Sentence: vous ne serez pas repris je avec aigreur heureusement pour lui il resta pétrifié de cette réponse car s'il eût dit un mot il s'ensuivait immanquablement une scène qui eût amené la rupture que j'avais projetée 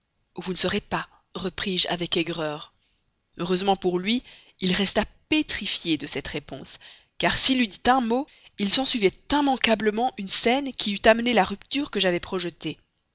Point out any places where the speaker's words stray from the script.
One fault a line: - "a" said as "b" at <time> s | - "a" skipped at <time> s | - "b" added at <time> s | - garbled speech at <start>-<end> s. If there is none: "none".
none